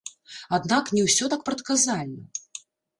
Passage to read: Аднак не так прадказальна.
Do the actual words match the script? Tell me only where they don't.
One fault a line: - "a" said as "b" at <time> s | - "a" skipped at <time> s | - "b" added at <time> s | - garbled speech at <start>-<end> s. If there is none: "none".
- "ўсё" added at 1.1 s